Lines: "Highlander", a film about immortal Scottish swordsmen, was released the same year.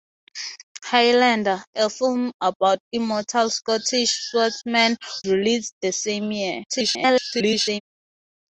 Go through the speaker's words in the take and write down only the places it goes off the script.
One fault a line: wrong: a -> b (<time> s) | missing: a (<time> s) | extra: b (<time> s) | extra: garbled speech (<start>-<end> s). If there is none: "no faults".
missing: was (5.0 s)
extra: garbled speech (6.7-7.8 s)